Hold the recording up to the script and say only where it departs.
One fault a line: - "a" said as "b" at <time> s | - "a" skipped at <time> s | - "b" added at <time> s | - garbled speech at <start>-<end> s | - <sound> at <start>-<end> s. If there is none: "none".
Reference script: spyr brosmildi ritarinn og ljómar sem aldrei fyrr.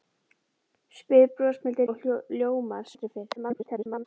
- "ritarinn" skipped at 1.9 s
- "sem" skipped at 2.9 s
- garbled speech at 3.4-4.1 s